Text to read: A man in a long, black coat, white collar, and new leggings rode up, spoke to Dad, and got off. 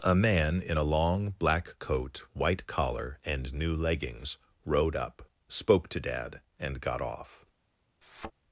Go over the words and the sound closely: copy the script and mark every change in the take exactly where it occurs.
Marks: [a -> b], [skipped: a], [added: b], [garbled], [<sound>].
A man in a long, black coat, white collar, and new leggings rode up, spoke to Dad, and got off. [thud]